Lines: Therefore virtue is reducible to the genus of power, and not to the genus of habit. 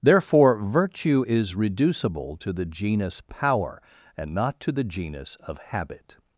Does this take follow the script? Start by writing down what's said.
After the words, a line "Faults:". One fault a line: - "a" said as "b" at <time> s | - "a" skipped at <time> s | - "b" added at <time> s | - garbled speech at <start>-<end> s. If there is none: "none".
Therefore virtue is reducible to the genus power, and not to the genus of habit.
Faults:
- "of" skipped at 3.2 s